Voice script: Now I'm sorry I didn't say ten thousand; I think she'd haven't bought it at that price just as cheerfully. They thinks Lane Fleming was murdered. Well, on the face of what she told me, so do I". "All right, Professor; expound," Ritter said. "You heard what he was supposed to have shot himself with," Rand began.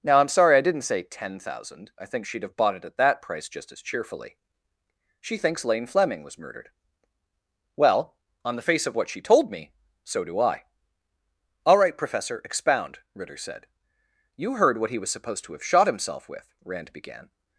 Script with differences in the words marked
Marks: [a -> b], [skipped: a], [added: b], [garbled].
Now I'm sorry I didn't say ten thousand; I think she'd [haven't -> have] bought it at that price just as cheerfully. [They -> She] thinks Lane Fleming was murdered. Well, on the face of what she told me, so do I". "All right, Professor; expound," Ritter said. "You heard what he was supposed to have shot himself with," Rand began.